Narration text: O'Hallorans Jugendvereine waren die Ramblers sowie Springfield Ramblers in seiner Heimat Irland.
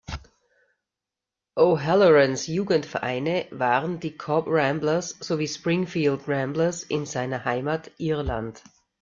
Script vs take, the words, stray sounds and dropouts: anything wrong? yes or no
yes